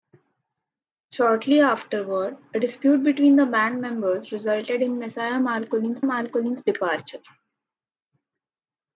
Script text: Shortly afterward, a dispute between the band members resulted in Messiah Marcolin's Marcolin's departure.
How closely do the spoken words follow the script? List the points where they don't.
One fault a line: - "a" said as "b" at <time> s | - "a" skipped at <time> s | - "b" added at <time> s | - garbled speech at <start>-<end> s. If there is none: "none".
none